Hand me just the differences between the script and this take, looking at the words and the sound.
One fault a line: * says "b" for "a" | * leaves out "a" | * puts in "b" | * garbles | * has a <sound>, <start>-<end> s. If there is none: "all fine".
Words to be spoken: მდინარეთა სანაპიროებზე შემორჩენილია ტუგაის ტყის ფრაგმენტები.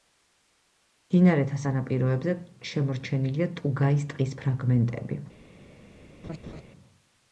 * has a laugh, 6.2-6.6 s